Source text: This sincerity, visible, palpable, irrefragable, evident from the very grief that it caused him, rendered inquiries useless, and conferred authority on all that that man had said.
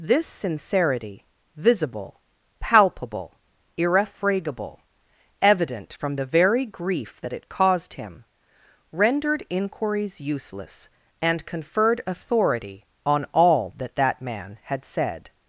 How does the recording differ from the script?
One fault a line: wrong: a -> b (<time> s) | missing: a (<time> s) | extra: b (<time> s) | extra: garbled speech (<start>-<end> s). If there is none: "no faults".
no faults